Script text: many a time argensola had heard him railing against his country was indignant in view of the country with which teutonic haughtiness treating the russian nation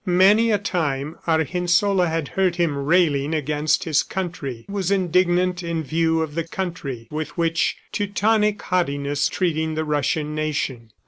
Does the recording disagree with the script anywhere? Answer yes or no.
no